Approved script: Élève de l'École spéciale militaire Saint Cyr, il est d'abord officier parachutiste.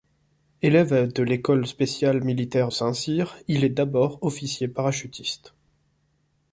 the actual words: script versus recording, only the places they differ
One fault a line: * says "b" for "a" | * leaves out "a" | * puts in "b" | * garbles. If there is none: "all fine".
all fine